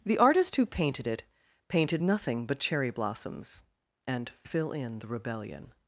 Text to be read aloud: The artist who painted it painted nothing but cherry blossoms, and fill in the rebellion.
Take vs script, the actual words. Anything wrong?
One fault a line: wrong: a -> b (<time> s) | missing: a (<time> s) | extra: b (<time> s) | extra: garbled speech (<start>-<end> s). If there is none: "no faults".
no faults